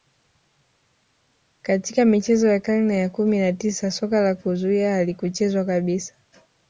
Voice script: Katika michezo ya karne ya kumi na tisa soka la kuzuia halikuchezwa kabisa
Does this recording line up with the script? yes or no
yes